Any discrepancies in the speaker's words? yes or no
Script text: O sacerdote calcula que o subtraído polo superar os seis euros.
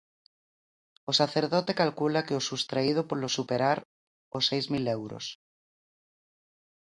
yes